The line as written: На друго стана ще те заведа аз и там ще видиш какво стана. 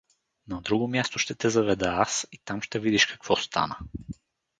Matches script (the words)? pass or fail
fail